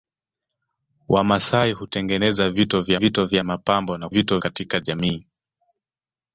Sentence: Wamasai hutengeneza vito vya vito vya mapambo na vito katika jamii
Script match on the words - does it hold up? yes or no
yes